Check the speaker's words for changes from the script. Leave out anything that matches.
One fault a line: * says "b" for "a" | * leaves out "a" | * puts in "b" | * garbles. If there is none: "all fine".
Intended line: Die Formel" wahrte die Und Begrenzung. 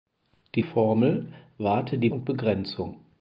all fine